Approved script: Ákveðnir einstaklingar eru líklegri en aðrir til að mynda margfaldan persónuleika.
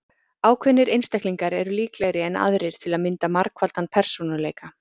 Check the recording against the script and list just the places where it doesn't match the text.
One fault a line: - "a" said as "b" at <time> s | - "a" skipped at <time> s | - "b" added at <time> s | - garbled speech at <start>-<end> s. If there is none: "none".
none